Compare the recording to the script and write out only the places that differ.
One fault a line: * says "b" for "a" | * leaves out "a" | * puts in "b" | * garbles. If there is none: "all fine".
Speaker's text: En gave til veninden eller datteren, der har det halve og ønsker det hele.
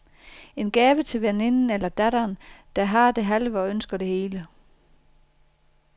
all fine